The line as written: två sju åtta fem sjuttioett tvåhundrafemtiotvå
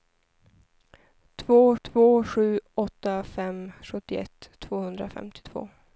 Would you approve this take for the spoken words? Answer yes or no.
no